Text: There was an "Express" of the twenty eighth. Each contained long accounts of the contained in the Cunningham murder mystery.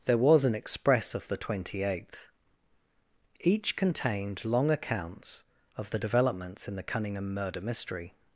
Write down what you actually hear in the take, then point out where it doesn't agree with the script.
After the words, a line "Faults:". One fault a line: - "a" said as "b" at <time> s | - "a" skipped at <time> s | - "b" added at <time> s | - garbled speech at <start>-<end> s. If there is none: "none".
There was an "Express" of the twenty eighth. Each contained long accounts of the developments in the Cunningham murder mystery.
Faults:
- "contained" said as "developments" at 6.0 s